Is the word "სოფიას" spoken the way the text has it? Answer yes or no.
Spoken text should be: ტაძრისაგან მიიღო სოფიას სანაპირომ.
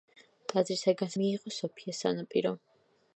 yes